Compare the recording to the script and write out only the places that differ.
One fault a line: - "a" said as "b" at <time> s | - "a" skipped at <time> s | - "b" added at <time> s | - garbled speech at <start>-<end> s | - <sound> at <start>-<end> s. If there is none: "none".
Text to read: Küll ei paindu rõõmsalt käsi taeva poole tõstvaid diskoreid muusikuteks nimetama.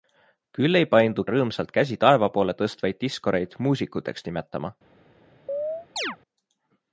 - chirp at 5.5-6.2 s